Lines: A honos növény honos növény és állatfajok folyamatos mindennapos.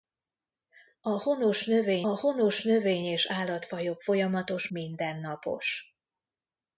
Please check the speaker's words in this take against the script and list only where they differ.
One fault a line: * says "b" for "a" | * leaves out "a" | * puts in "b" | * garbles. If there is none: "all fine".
all fine